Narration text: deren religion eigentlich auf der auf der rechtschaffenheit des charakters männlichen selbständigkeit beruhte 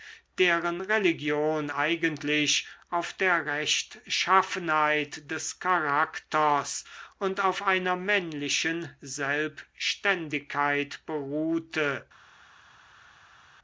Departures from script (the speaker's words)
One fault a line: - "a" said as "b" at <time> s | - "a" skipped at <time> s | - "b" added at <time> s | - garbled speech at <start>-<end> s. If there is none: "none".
- "auf der" skipped at 3.5 s
- "und auf einer" added at 7.2 s